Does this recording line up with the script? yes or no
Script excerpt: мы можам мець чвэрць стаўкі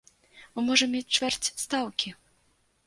yes